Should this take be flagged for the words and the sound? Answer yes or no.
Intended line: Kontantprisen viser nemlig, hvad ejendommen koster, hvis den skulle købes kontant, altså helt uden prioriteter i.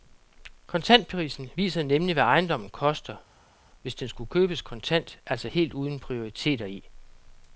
no